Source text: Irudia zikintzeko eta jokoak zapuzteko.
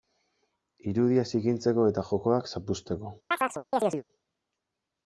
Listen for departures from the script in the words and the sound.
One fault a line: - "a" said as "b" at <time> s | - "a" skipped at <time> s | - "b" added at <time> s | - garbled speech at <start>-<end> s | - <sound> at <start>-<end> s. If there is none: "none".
- chirp at 3.3-4.0 s